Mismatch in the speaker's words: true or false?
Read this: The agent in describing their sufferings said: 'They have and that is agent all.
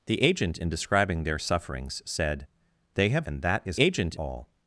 false